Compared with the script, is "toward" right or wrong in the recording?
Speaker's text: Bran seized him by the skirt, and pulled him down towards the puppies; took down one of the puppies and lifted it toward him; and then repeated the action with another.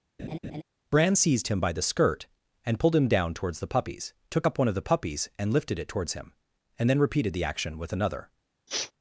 wrong